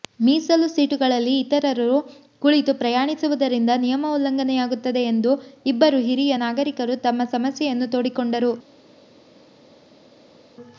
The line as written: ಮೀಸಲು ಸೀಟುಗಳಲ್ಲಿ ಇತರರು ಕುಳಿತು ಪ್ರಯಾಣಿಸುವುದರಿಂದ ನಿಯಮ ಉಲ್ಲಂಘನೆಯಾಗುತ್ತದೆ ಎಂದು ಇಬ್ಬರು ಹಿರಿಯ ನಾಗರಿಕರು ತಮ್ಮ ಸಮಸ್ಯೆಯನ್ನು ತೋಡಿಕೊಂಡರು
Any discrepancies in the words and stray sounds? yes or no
no